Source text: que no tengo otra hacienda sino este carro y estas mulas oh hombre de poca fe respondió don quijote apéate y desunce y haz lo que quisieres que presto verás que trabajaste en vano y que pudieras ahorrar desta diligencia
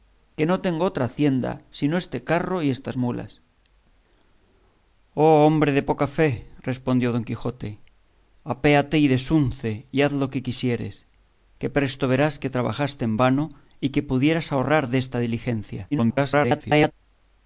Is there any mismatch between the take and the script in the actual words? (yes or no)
yes